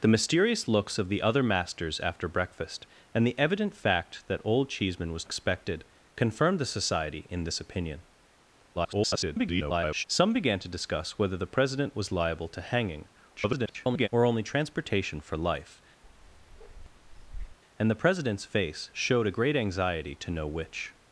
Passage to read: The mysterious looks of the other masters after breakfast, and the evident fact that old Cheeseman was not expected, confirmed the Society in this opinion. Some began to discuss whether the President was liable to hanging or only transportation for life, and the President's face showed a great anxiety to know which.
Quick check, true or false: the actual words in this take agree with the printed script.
false